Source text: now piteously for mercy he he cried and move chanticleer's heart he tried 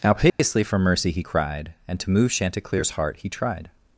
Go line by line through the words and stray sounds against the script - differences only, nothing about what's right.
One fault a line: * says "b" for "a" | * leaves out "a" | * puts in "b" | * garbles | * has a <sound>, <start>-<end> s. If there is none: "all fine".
* has a dropout, 0.3-0.4 s
* leaves out "he"
* puts in "to"